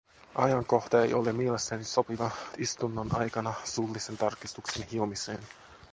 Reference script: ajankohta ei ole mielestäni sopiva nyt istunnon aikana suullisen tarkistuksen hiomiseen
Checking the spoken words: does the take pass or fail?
fail